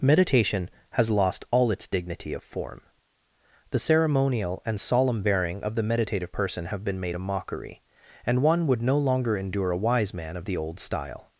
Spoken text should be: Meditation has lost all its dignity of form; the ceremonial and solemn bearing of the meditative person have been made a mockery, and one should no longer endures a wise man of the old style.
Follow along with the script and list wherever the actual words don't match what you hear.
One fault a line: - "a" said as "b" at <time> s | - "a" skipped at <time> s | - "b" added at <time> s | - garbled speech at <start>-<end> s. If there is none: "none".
- "should" said as "would" at 8.7 s
- "endures" said as "endure" at 9.4 s